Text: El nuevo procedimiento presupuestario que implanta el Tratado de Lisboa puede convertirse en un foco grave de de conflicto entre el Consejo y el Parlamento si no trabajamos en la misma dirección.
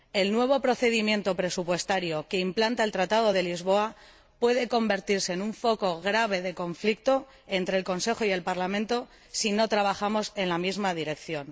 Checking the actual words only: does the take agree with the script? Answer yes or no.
no